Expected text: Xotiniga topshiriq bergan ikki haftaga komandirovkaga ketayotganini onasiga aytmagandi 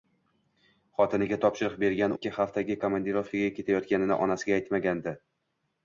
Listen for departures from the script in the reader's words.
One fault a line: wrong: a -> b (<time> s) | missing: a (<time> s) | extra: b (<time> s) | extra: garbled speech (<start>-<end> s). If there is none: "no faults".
no faults